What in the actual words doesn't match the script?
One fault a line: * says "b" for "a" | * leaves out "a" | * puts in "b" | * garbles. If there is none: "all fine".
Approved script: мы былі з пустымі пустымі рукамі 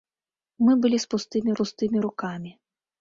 all fine